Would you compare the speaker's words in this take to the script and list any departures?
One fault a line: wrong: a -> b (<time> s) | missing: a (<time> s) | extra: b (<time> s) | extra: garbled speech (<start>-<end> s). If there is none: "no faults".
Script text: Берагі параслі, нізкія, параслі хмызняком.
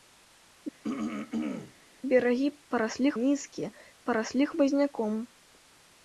no faults